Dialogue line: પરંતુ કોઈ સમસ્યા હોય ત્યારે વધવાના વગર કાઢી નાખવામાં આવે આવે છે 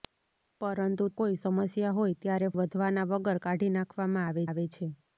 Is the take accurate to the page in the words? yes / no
yes